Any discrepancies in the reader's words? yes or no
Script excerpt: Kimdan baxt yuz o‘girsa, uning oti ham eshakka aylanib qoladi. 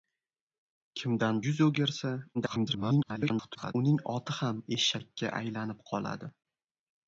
yes